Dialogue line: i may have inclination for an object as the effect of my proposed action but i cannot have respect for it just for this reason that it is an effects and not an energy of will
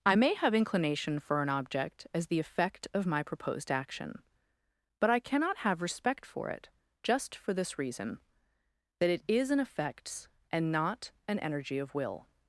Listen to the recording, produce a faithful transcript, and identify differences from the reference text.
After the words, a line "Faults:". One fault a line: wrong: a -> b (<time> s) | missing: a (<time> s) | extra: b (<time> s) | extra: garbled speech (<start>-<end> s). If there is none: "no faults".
i may have inclination for an object as the effect of my proposed action but i cannot have respect for it just for this reason that it is an effects and not an energy of will
Faults:
no faults